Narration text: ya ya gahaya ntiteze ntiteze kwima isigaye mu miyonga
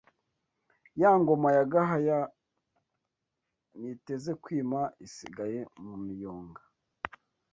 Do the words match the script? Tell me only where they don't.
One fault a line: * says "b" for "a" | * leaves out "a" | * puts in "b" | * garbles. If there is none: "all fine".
* puts in "ngoma"
* leaves out "ntiteze"